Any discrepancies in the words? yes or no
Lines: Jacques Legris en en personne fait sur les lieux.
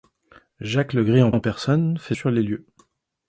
no